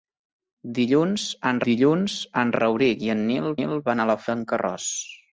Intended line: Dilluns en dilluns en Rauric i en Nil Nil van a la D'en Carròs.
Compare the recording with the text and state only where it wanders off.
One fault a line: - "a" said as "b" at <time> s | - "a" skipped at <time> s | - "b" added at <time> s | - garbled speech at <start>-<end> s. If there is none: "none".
none